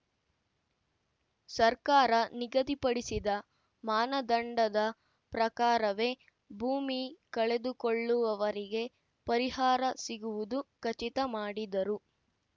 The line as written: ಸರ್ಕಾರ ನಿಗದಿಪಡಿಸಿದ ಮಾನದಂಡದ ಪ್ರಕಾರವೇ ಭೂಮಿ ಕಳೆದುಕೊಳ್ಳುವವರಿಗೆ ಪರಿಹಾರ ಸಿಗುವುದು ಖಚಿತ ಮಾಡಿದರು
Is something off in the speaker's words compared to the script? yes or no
no